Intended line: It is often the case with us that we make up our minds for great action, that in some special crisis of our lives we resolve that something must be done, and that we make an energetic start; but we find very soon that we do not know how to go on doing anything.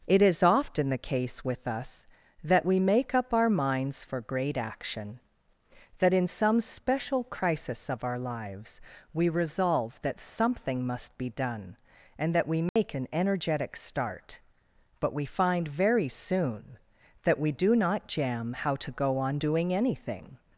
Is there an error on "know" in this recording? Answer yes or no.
yes